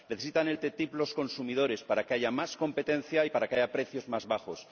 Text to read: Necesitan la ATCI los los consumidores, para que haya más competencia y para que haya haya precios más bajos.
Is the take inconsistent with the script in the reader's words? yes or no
yes